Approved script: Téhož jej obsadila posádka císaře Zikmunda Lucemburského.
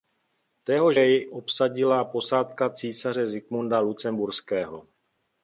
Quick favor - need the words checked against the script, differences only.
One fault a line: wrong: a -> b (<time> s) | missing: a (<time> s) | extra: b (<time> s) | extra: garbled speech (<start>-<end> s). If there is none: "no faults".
no faults